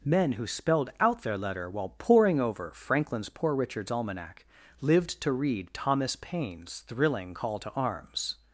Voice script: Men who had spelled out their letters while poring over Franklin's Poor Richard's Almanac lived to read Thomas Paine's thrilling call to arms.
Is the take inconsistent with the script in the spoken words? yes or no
yes